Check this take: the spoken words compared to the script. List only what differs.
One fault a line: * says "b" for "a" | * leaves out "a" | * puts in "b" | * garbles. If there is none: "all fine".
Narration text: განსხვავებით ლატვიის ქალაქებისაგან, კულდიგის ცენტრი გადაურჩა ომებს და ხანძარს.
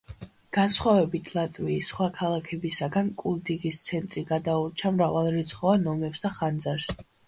* puts in "სხვა"
* puts in "მრავალრიცხოვან"